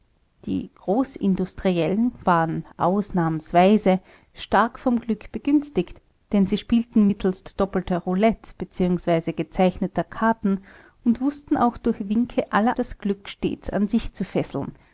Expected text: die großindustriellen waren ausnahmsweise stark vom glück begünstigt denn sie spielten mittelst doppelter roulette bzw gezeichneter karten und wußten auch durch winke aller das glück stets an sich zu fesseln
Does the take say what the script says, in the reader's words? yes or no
yes